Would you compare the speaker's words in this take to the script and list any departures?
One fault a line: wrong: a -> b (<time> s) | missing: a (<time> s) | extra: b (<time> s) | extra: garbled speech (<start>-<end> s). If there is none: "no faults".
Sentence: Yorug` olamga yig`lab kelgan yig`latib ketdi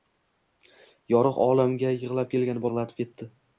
no faults